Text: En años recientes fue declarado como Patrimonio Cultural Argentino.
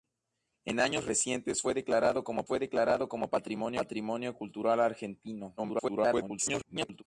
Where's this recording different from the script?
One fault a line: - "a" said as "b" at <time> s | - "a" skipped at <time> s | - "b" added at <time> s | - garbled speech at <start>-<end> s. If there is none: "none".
- "fue declarado como" added at 2.4 s
- garbled speech at 5.6-7.0 s